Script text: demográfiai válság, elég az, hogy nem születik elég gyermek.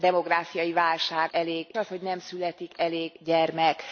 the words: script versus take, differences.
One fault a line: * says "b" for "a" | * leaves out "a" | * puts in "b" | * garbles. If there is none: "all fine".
all fine